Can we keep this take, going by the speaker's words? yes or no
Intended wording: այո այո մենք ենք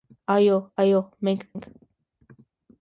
yes